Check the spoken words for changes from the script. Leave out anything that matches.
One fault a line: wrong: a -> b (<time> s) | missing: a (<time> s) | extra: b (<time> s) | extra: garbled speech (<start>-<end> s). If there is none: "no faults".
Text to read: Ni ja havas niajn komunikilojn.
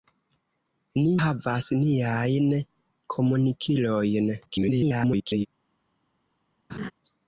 missing: ja (1.1 s)
extra: garbled speech (4.5-5.5 s)